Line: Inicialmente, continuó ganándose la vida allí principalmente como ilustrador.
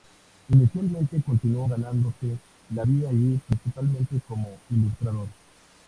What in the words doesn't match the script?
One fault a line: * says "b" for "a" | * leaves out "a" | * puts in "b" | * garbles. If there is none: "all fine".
all fine